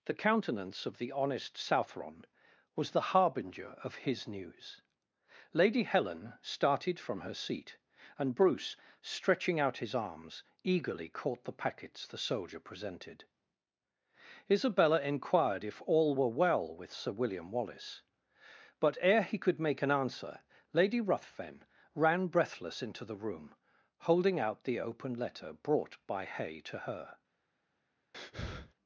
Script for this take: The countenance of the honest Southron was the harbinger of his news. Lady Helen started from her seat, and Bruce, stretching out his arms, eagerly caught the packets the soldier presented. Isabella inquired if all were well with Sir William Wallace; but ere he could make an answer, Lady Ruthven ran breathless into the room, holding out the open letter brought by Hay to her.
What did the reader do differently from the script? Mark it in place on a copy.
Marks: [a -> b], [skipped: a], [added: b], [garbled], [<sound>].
The countenance of the honest Southron was the harbinger of his news. Lady Helen started from her seat, and Bruce, stretching out his arms, eagerly caught the packets the soldier presented. Isabella inquired if all were well with Sir William Wallace; but ere he could make an answer, Lady Ruthven ran breathless into the room, holding out the open letter brought by Hay to her. [breath]